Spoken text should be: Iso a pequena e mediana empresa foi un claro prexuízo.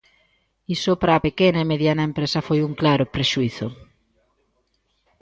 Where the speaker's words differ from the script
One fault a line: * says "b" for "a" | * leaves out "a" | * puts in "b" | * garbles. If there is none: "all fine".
* puts in "para"